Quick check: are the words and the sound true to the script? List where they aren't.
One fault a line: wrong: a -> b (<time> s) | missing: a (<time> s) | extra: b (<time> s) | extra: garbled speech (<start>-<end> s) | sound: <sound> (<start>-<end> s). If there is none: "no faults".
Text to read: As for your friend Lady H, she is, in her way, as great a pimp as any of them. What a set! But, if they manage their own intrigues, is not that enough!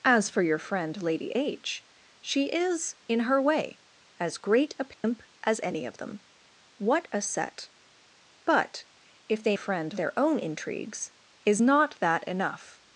sound: dropout (4.9-5.0 s)
wrong: manage -> friend (9.5 s)